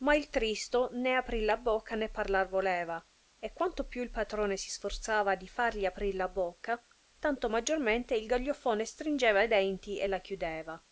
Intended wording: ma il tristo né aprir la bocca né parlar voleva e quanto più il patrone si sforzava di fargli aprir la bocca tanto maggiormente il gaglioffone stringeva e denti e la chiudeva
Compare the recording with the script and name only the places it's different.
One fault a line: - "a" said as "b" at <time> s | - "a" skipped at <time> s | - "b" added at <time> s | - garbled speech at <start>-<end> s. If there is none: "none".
none